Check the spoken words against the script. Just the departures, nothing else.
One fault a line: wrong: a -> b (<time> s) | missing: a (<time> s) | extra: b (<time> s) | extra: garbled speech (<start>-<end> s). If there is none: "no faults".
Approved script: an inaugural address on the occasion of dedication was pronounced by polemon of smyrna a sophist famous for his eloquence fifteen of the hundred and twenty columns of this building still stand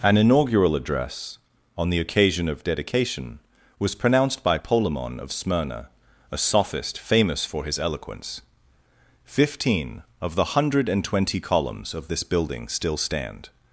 no faults